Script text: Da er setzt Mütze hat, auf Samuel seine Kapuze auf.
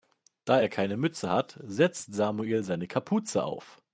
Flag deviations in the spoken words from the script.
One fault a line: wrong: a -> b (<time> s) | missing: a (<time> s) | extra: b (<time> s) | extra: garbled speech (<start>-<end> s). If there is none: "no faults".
wrong: setzt -> keine (0.7 s)
wrong: auf -> setzt (1.6 s)